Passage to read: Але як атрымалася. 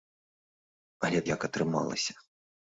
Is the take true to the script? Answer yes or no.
yes